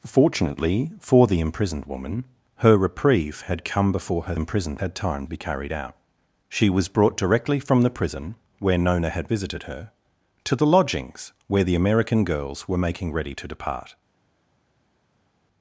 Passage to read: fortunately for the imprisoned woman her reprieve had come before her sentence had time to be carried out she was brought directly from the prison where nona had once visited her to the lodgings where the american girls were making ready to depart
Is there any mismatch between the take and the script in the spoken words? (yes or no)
yes